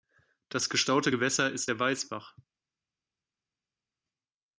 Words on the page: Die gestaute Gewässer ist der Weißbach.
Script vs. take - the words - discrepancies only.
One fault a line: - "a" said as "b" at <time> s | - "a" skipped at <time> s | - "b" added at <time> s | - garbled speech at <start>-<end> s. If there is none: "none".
- "Die" said as "Das" at 0.5 s